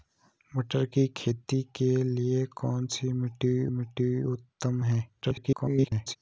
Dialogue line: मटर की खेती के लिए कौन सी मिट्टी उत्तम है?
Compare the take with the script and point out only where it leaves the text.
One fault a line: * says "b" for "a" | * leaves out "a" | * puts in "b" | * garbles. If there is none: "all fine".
* puts in "मिट्टी"
* garbles